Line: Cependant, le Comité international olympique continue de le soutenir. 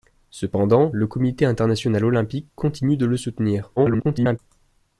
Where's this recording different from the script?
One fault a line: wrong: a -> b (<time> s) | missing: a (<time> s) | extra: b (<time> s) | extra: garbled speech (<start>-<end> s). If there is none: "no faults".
extra: garbled speech (3.8-4.4 s)